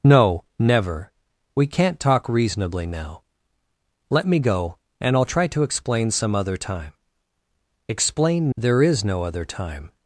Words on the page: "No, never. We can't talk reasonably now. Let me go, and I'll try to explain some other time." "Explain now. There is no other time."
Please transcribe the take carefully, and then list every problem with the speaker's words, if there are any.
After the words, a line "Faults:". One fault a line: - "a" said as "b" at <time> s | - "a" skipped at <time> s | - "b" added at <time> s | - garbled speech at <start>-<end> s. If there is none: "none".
"No, never. We can't talk reasonably now. Let me go, and I'll try to explain some other time." "Explain. There is no other time."
Faults:
- "now" skipped at 8.5 s